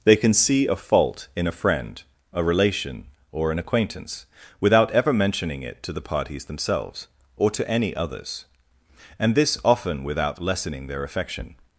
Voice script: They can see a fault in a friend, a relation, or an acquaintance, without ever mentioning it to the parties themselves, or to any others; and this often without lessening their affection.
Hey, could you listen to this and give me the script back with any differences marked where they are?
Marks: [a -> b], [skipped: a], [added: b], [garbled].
They can see a fault in a friend, a relation, or an acquaintance, without ever mentioning it to the parties themselves, or to any others; and this often without lessening their affection.